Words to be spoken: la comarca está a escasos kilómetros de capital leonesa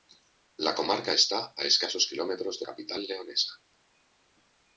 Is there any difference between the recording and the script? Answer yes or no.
no